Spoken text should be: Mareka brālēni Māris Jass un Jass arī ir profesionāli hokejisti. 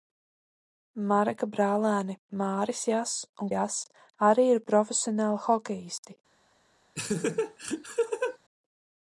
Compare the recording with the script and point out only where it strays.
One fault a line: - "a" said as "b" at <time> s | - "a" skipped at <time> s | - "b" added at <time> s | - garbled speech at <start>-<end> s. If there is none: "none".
none